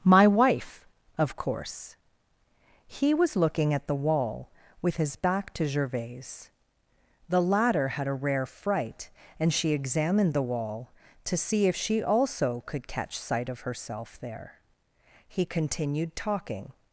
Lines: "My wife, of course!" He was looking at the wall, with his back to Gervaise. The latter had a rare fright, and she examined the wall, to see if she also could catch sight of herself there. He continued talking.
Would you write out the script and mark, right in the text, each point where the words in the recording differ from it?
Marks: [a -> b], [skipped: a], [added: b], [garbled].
"My wife, of course!" He was looking at the wall, with his back to Gervaise. The latter had a rare fright, and she examined the wall, to see if she also could catch sight of herself there. He continued talking.